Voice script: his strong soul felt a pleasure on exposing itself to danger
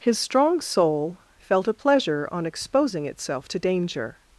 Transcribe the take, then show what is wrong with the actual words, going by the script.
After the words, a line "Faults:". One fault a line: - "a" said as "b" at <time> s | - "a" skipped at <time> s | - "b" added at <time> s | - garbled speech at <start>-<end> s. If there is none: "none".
his strong soul felt a pleasure on exposing itself to danger
Faults:
none